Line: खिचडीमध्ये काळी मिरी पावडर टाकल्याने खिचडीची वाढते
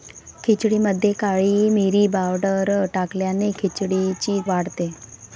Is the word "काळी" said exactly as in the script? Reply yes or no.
yes